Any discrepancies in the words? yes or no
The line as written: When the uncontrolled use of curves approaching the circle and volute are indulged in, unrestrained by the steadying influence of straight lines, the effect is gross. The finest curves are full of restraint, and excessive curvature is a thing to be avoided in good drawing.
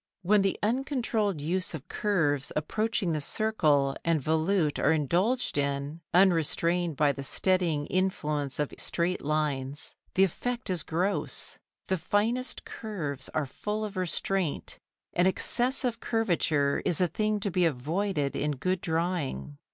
no